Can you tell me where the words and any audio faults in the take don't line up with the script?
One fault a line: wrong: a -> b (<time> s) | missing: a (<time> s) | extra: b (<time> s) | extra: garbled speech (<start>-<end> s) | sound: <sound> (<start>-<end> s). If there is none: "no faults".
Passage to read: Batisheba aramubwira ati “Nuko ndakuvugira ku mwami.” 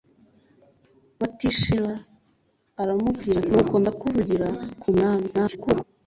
missing: ati (3.4 s)
extra: garbled speech (5.3-5.8 s)